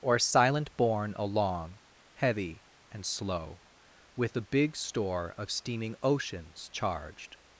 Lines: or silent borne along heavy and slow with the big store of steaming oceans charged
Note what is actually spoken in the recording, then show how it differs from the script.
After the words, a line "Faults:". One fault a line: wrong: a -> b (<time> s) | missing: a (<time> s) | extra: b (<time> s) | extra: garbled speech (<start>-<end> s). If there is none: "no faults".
or silent borne along heavy and slow with the big store of steaming oceans charged
Faults:
no faults